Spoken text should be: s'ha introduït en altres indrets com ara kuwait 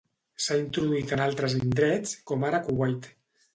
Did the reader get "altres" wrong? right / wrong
right